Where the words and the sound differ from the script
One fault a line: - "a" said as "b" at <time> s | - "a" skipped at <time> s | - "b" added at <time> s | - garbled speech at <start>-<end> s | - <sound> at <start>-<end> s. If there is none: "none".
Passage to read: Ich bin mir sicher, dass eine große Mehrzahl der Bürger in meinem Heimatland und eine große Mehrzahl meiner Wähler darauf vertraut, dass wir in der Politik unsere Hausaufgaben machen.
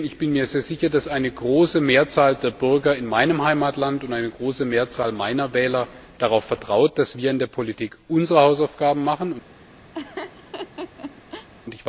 - laugh at 9.9-11.5 s